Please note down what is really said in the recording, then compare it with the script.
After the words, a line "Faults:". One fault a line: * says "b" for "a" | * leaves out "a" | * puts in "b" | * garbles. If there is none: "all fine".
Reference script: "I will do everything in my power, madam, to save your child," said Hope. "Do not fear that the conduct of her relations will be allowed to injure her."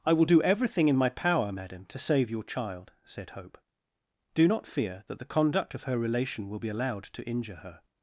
"I will do everything in my power, madam, to save your child," said Hope. "Do not fear that the conduct of her relation will be allowed to injure her."
Faults:
* says "relation" for "relations"